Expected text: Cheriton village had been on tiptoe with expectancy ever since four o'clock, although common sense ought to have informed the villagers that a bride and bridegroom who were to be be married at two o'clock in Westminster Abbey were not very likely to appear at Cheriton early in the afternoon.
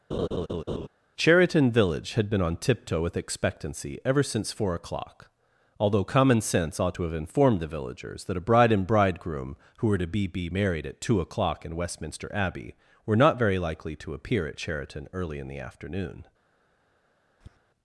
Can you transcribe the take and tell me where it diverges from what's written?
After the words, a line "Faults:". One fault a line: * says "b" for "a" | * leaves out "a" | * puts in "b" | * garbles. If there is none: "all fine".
Cheriton village had been on tiptoe with expectancy ever since four o'clock, although common sense ought to have informed the villagers that a bride and bridegroom who were to be be married at two o'clock in Westminster Abbey were not very likely to appear at Cheriton early in the afternoon.
Faults:
all fine